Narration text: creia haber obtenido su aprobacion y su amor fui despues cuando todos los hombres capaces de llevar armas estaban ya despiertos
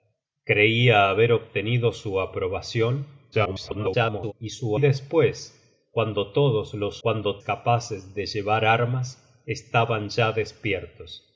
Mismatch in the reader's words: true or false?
true